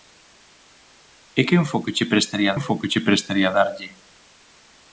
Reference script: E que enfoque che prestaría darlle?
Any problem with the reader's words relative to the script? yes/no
yes